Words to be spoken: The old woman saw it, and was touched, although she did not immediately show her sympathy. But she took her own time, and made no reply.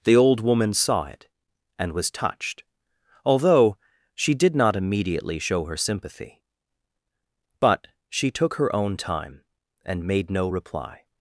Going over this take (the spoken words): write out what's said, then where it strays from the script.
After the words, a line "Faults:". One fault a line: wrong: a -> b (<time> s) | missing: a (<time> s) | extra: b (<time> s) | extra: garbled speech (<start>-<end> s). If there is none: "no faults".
The old woman saw it, and was touched, although she did not immediately show her sympathy. But she took her own time, and made no reply.
Faults:
no faults